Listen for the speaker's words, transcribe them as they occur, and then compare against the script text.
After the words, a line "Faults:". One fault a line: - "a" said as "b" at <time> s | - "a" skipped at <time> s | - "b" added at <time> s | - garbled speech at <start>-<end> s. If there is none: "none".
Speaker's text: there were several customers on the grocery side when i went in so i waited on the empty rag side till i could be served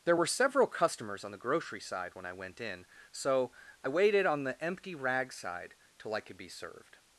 there were several customers on the grocery side when i went in so i waited on the empty rag side till i could be served
Faults:
none